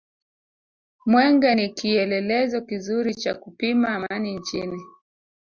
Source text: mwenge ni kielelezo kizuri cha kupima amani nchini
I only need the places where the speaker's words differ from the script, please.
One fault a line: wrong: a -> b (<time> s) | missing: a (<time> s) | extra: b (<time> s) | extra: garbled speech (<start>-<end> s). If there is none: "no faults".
no faults